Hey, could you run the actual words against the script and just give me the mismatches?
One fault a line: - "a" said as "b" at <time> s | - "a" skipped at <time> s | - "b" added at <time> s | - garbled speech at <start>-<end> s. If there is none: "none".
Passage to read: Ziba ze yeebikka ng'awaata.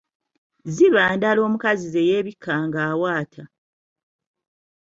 - "ndala omukazi" added at 1.2 s